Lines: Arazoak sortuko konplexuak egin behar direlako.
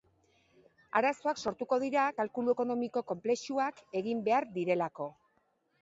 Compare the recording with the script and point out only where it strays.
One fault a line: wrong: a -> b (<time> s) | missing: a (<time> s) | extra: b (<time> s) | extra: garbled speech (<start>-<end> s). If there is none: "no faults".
extra: dira kalkulu ekonomiko (1.9 s)